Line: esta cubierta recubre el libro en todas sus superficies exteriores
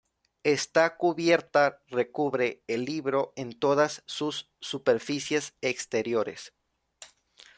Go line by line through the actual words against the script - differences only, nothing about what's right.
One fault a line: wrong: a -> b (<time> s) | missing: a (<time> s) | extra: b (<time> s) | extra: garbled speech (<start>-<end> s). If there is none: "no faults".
no faults